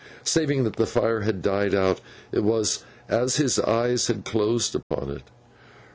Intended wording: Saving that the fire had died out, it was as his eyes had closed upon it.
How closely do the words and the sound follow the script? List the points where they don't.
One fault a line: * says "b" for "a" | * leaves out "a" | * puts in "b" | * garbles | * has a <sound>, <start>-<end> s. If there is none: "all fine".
* has a dropout, 4.8-4.9 s